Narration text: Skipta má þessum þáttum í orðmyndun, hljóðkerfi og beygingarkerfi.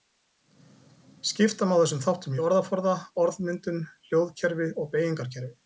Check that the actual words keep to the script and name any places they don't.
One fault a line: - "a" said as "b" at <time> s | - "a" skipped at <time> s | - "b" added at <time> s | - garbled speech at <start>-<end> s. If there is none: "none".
- "orðaforða" added at 2.5 s